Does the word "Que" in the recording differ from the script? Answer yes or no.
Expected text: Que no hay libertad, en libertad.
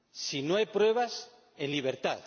yes